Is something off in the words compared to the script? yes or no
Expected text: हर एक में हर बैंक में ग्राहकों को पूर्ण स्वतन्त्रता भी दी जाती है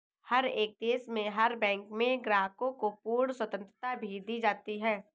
yes